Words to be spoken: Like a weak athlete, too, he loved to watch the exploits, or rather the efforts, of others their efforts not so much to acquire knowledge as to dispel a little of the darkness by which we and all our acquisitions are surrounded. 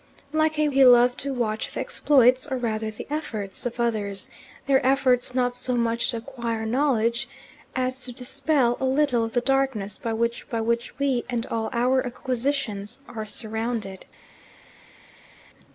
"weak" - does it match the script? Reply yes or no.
no